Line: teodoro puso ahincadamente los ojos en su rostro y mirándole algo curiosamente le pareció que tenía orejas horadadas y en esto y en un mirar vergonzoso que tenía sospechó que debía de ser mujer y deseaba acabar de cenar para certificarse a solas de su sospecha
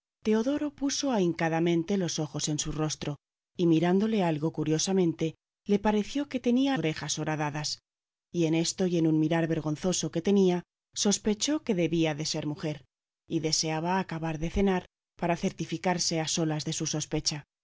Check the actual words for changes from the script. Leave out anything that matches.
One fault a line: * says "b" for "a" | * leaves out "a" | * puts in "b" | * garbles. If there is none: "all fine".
all fine